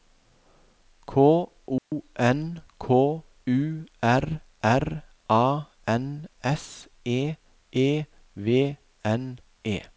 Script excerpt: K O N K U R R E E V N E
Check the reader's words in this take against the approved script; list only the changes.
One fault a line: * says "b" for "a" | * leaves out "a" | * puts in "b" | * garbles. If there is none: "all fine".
* puts in "A N S"